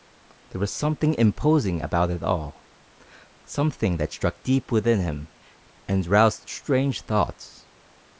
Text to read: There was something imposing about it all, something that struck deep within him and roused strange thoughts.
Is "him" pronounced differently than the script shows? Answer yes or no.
no